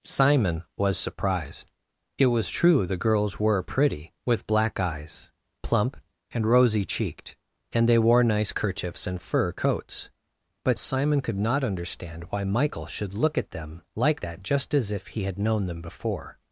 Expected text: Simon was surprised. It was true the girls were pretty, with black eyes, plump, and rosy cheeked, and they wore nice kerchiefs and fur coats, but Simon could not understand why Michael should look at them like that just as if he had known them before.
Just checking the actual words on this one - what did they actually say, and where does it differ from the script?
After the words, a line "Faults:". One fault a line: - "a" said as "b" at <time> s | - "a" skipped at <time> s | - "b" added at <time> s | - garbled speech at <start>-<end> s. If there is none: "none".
Simon was surprised. It was true the girls were pretty, with black eyes, plump, and rosy cheeked, and they wore nice kerchiefs and fur coats, but Simon could not understand why Michael should look at them like that just as if he had known them before.
Faults:
none